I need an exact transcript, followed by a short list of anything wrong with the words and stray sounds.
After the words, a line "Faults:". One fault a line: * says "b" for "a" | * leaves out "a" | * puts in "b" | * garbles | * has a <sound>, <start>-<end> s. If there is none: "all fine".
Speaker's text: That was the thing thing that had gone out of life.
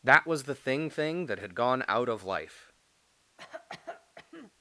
That was the thing thing that had gone out of life.
Faults:
* has a cough, 3.4-4.5 s